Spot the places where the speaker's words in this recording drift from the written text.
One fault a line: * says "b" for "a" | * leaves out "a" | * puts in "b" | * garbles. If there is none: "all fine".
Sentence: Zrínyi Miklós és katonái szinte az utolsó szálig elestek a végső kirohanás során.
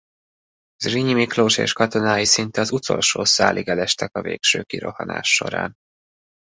all fine